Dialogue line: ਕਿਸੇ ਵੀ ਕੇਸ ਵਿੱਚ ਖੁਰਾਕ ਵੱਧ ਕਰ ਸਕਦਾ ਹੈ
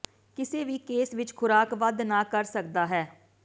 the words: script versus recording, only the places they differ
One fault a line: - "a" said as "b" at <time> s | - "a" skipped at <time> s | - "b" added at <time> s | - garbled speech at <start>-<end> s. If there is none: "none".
- "ਨਾ" added at 2.0 s